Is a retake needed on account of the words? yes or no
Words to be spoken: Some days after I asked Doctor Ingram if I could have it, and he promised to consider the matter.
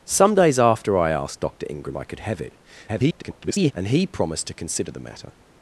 yes